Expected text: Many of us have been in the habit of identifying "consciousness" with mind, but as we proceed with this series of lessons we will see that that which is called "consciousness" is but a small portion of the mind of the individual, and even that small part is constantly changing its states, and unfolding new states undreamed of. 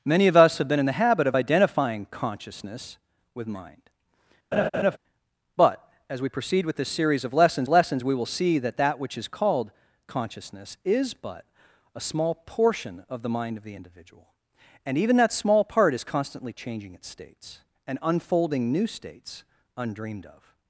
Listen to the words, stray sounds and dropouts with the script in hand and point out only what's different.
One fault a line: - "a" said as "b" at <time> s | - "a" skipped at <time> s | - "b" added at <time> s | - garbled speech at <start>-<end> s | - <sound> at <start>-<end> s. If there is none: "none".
- laugh at 4.5-5.0 s
- "lessons" added at 7.7 s